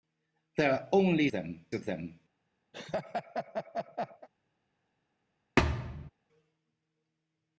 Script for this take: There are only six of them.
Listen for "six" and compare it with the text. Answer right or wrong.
wrong